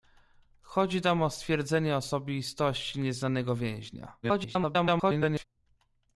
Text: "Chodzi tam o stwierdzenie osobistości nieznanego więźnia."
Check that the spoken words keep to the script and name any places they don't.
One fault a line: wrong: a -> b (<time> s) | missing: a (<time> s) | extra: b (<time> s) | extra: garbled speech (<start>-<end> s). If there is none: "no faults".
extra: garbled speech (4.2-5.4 s)